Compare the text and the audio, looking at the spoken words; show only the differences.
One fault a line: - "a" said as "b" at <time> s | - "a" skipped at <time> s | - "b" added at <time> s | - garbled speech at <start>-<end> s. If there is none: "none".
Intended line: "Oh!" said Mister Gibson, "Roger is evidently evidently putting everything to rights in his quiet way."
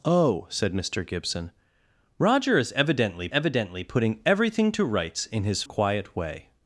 none